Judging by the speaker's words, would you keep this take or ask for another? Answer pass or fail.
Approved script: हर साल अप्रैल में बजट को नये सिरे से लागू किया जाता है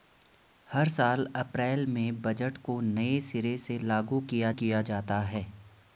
fail